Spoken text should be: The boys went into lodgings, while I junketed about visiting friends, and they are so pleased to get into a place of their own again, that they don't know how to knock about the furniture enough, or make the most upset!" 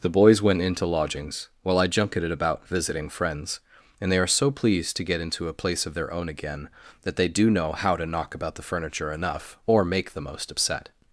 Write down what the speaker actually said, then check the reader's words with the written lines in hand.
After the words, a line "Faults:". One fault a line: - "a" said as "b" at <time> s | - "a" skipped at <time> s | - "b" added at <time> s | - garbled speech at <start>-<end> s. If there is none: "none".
The boys went into lodgings, while I junketed about visiting friends, and they are so pleased to get into a place of their own again, that they do know how to knock about the furniture enough, or make the most upset!"
Faults:
- "don't" said as "do" at 7.3 s